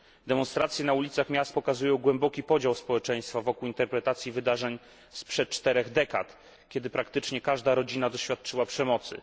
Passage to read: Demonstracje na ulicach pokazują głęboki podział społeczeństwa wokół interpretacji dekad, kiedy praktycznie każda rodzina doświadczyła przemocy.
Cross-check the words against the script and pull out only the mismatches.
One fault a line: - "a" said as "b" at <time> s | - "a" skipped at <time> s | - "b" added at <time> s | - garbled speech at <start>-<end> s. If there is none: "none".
- "miast" added at 1.3 s
- "wydarzeń sprzed czterech" added at 4.3 s